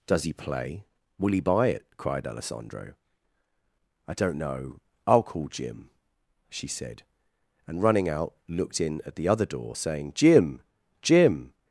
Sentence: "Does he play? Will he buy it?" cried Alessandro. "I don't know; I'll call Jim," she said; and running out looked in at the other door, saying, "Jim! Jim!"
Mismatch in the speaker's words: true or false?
false